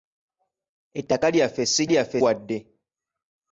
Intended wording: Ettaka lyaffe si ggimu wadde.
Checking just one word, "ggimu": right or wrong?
wrong